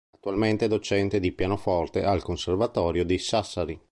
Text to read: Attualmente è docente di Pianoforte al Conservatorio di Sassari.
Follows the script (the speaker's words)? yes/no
yes